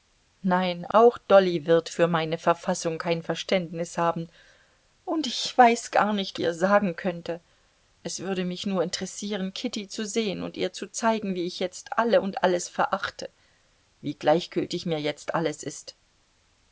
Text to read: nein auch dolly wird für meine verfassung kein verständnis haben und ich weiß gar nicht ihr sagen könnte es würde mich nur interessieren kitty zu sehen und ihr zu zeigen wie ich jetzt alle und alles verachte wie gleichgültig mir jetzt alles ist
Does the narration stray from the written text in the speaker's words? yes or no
no